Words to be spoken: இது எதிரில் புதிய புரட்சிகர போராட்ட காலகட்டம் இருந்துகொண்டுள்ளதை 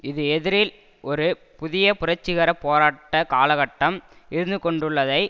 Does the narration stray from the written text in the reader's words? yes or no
yes